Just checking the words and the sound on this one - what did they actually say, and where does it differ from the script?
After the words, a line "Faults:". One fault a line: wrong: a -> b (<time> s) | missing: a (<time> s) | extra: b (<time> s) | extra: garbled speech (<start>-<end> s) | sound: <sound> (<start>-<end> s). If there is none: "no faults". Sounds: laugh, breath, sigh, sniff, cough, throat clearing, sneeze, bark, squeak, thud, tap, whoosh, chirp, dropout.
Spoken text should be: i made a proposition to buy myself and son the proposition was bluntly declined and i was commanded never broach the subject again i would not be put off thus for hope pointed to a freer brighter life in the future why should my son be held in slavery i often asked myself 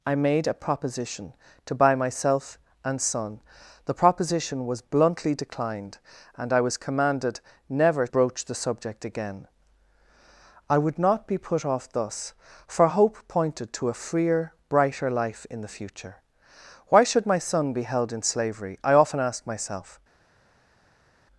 i made a proposition to buy myself and son the proposition was bluntly declined and i was commanded never broach the subject again i would not be put off thus for hope pointed to a freer brighter life in the future why should my son be held in slavery i often asked myself
Faults:
no faults